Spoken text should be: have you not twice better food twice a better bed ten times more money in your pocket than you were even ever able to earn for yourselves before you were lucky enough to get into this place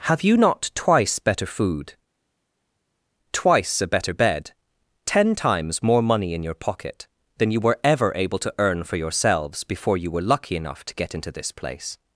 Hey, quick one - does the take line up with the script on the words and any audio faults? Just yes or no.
no